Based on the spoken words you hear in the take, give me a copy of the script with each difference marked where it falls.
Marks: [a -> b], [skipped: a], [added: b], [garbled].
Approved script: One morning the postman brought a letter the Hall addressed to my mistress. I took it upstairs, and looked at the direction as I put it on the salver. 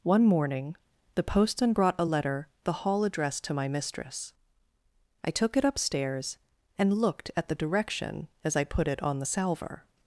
One morning the postman brought a letter the Hall addressed to my mistress. I took it upstairs, and looked at the direction as I put it on the salver.